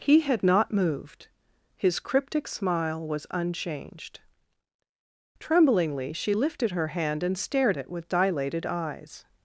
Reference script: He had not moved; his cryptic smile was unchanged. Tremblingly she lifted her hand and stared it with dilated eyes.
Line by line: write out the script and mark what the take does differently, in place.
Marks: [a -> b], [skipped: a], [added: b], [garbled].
He had not moved; his cryptic smile was unchanged. Tremblingly she lifted her hand and stared it with dilated eyes.